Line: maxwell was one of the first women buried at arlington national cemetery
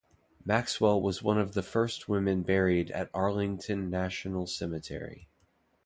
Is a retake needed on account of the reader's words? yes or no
no